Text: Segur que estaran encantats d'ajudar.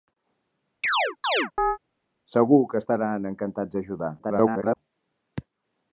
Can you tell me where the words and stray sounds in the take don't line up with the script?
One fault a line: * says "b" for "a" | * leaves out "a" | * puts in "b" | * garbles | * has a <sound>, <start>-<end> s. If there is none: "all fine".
* has a chirp, 0.8-1.8 s
* garbles